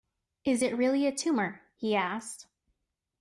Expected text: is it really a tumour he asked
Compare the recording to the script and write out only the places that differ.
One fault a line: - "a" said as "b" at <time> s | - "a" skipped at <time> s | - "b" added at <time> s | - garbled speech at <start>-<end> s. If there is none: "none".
none